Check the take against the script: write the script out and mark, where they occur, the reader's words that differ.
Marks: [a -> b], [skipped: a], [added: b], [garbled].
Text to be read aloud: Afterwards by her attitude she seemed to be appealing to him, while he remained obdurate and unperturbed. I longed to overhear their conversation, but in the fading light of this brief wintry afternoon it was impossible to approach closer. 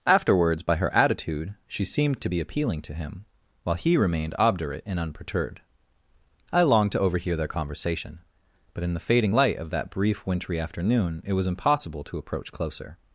Afterwards by her attitude she seemed to be appealing to him, while he remained obdurate and unperturbed. I longed to overhear their conversation, but in the fading light of [this -> that] brief wintry afternoon it was impossible to approach closer.